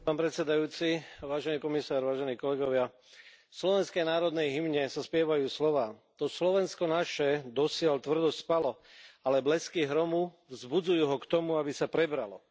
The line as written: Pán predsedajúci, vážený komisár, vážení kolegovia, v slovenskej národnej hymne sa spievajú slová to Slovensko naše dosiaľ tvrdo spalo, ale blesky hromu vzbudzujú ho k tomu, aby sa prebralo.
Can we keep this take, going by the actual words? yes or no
yes